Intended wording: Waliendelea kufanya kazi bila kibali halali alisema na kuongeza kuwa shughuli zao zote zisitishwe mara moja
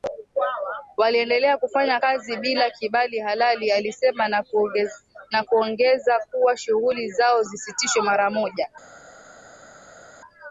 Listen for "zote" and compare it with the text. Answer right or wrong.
wrong